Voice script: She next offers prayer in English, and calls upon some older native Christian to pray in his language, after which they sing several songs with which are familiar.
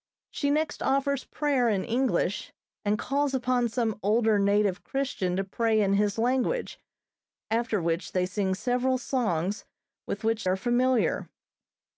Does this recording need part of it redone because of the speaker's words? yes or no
no